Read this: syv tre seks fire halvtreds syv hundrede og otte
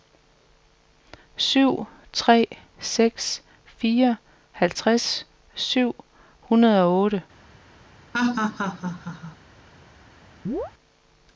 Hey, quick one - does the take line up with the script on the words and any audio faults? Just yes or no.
no